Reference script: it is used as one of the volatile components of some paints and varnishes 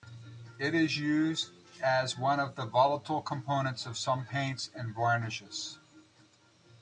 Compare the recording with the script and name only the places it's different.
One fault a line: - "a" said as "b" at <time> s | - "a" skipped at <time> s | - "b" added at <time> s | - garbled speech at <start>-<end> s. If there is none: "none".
none